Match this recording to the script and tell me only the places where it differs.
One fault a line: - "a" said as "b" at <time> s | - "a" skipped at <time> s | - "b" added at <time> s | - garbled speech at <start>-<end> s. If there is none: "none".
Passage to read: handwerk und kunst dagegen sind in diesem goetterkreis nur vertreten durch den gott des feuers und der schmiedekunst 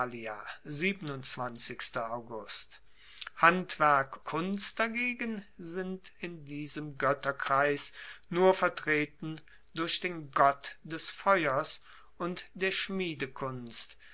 - "und" skipped at 4.2 s